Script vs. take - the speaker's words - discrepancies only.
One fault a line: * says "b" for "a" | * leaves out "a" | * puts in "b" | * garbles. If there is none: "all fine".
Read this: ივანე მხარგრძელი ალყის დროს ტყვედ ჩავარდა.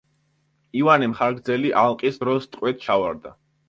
all fine